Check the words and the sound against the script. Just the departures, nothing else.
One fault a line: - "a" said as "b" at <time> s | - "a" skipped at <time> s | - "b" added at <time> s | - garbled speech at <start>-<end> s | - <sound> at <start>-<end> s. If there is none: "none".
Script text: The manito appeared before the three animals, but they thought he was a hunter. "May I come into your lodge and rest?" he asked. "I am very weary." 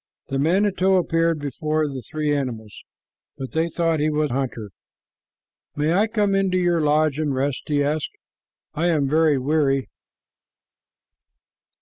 - "a" skipped at 4.3 s